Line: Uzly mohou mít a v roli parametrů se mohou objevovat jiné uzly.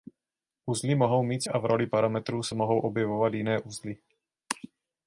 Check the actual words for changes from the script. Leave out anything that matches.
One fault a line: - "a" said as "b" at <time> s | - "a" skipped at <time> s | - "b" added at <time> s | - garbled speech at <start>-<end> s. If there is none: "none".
none